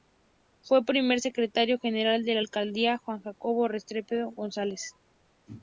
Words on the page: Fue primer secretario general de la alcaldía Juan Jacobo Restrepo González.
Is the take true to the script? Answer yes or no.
yes